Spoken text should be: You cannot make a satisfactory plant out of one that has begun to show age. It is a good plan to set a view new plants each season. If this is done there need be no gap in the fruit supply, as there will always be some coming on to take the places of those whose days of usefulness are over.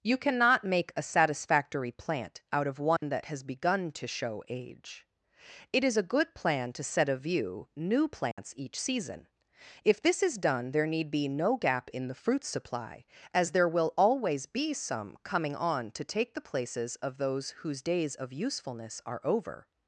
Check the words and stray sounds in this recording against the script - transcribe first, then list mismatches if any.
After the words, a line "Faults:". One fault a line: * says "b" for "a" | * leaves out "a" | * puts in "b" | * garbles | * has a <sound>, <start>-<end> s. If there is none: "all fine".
You cannot make a satisfactory plant out of one that has begun to show age. It is a good plan to set a view new plants each season. If this is done there need be no gap in the fruit supply, as there will always be some coming on to take the places of those whose days of usefulness are over.
Faults:
* has a dropout, 3.0-3.0 s
* has a dropout, 8.3-8.4 s